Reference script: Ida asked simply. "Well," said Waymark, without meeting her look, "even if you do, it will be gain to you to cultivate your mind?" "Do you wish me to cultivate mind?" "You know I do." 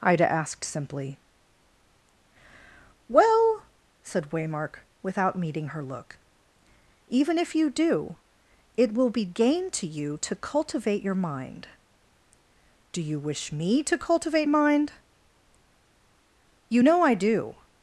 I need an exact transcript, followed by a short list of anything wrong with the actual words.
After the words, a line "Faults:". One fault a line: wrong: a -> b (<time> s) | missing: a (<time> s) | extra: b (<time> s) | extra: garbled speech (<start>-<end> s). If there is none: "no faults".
Ida asked simply. "Well," said Waymark, without meeting her look, "even if you do, it will be gain to you to cultivate your mind?" "Do you wish me to cultivate mind?" "You know I do."
Faults:
no faults